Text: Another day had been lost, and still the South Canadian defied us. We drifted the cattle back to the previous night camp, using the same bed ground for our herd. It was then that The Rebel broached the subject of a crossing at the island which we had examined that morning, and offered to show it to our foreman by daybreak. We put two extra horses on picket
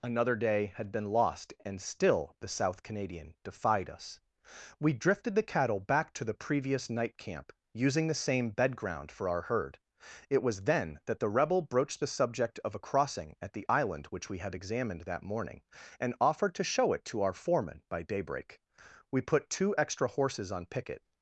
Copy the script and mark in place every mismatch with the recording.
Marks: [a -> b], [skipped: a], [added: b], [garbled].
Another day had been lost, and still the South Canadian defied us. We drifted the cattle back to the previous night camp, using the same bed ground for our herd. It was then that The Rebel broached the subject of a crossing at the island which we had examined that morning, and offered to show it to our foreman by daybreak. We put two extra horses on picket